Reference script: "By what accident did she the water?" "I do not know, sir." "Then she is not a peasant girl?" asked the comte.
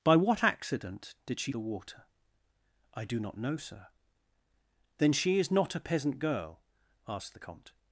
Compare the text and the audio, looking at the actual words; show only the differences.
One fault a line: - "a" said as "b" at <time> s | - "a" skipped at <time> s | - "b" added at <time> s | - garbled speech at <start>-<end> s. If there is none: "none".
none